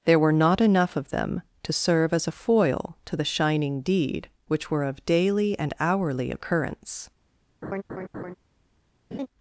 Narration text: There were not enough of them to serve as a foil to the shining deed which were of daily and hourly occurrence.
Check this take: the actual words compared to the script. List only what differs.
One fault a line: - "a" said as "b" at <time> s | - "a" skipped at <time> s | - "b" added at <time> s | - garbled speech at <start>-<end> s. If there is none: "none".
none